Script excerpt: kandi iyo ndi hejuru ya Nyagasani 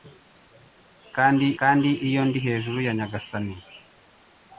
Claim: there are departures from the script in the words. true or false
true